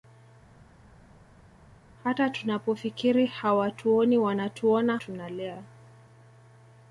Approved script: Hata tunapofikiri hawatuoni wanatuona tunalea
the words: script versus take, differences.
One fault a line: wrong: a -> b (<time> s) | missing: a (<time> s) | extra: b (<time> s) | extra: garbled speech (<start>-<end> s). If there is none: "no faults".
no faults